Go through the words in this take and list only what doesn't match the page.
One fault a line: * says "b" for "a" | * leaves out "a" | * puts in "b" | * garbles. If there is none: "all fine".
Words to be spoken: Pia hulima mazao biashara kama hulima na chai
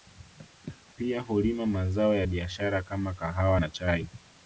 * puts in "ya"
* says "kahawa" for "hulima"